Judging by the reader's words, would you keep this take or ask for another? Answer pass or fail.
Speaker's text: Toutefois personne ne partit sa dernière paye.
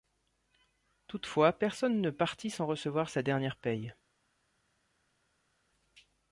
fail